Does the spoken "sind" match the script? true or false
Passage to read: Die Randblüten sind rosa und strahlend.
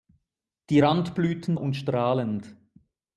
false